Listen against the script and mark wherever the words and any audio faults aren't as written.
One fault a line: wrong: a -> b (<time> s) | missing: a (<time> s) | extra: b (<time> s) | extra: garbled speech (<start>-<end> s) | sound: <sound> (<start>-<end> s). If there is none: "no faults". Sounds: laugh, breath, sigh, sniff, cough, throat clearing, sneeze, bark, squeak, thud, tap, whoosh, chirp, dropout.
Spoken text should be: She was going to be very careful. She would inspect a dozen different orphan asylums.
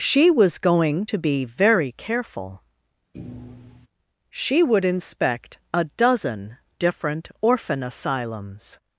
sound: thud (3.1-3.9 s)